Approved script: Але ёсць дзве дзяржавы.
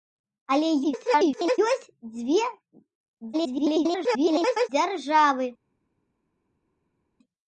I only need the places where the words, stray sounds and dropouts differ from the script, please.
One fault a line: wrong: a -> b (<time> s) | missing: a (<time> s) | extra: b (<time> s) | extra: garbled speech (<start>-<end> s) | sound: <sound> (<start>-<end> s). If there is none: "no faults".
extra: garbled speech (0.8-1.6 s)
extra: garbled speech (3.3-4.7 s)